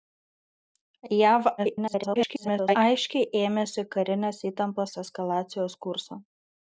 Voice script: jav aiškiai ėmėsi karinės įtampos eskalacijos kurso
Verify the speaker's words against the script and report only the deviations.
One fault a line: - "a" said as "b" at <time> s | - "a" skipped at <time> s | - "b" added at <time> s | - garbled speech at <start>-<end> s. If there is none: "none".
- garbled speech at 1.6-2.8 s